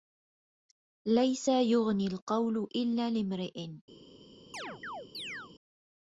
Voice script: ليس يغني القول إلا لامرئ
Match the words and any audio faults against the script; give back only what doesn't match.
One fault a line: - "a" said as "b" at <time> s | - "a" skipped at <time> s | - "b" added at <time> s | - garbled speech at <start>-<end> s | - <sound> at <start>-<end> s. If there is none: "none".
- chirp at 4.5-5.5 s